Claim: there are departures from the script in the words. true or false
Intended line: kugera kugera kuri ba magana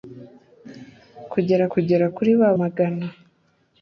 false